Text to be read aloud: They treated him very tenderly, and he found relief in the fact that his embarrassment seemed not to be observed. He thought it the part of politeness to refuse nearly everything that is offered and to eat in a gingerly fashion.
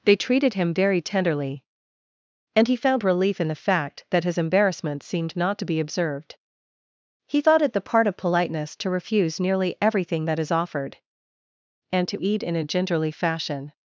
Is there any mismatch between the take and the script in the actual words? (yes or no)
no